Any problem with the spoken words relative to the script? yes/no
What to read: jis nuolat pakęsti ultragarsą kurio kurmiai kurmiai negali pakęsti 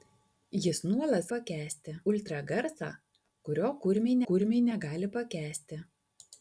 no